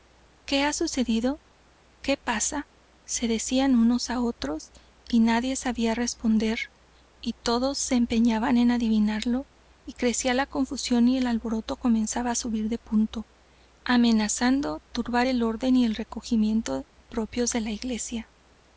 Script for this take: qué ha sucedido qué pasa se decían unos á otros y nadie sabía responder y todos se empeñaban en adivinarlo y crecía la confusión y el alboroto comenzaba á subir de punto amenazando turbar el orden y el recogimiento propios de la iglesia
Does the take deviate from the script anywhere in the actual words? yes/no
no